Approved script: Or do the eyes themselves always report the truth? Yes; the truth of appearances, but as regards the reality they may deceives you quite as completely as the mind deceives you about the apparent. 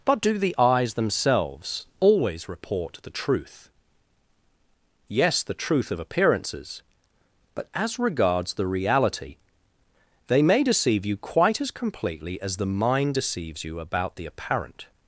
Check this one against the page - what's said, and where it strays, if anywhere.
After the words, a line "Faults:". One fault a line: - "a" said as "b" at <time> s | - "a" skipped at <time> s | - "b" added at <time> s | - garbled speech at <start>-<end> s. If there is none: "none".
But do the eyes themselves always report the truth? Yes; the truth of appearances, but as regards the reality they may deceive you quite as completely as the mind deceives you about the apparent.
Faults:
- "Or" said as "But" at 0.0 s
- "deceives" said as "deceive" at 10.6 s